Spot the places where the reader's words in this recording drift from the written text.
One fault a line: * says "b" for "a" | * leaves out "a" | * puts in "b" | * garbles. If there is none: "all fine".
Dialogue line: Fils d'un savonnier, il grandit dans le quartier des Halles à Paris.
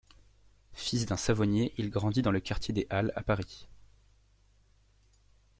all fine